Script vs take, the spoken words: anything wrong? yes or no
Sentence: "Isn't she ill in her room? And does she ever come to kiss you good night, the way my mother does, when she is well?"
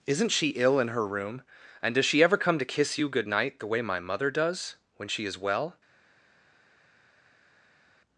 no